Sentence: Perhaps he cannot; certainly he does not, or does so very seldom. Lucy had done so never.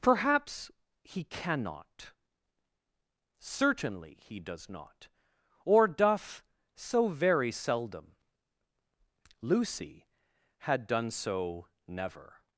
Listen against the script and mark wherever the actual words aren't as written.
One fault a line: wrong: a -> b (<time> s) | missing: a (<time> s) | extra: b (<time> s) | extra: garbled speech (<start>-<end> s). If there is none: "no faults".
wrong: does -> doth (5.9 s)